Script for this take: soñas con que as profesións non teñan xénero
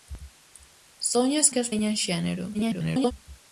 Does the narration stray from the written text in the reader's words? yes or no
yes